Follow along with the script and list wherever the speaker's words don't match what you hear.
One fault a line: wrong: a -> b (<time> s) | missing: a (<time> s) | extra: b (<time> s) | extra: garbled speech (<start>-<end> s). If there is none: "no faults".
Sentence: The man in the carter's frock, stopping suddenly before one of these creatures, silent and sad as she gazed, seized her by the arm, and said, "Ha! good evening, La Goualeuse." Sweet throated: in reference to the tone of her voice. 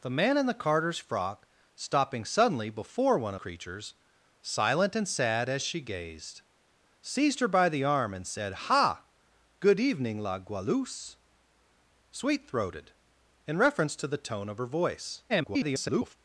missing: of these (3.4 s)
extra: garbled speech (15.3-16.2 s)